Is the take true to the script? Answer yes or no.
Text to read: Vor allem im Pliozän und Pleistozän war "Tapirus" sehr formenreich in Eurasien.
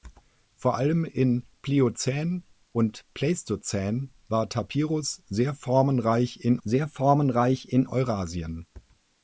no